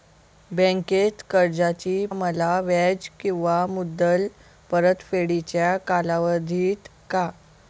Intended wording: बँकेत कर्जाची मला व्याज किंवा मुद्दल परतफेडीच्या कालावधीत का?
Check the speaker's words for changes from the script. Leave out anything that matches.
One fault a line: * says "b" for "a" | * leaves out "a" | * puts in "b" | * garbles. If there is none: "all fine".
all fine